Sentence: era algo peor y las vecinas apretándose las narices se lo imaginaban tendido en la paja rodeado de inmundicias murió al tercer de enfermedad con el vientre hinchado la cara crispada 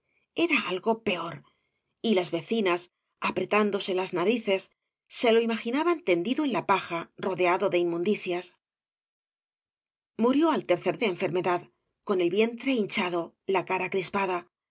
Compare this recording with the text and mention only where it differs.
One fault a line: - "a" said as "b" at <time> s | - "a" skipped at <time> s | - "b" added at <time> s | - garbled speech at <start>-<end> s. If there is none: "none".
none